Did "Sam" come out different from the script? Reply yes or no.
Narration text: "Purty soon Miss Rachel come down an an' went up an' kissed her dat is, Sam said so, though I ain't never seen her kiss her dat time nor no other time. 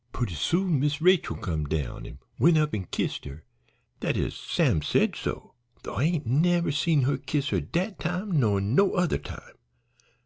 no